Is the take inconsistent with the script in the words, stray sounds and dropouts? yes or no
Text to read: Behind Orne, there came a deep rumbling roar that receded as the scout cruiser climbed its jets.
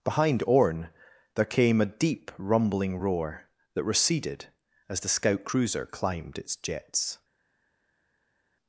no